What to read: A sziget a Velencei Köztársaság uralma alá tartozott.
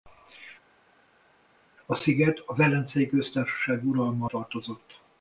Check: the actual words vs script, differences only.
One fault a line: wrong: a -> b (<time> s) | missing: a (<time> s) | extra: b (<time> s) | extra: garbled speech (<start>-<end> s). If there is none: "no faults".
missing: alá (4.3 s)